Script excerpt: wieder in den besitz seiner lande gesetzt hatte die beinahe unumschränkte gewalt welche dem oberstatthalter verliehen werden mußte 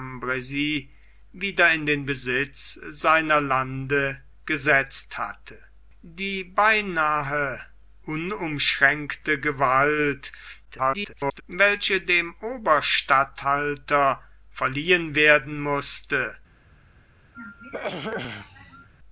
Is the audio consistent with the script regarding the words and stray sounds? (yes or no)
no